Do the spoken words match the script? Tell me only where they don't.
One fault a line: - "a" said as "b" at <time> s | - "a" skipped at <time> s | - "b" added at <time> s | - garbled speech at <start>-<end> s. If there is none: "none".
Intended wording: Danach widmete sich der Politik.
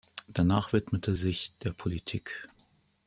none